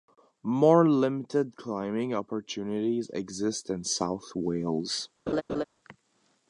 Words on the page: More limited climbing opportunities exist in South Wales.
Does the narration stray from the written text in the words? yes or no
no